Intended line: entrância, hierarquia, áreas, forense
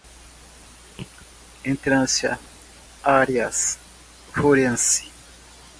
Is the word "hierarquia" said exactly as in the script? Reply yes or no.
no